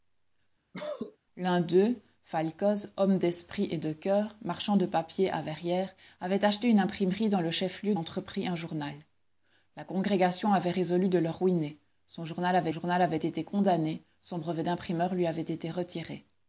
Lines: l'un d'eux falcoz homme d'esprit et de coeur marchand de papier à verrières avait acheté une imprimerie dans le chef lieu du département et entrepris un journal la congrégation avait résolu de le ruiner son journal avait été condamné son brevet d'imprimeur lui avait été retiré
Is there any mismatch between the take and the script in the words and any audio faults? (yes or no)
yes